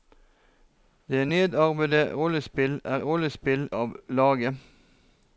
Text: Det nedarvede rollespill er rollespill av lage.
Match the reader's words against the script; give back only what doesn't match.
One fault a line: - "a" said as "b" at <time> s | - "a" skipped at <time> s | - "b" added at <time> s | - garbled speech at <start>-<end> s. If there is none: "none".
none